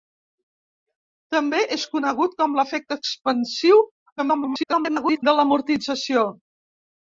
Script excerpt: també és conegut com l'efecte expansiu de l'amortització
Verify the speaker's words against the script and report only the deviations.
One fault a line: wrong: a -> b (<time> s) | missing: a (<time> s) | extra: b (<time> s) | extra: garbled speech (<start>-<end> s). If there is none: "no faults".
extra: garbled speech (4.2-5.2 s)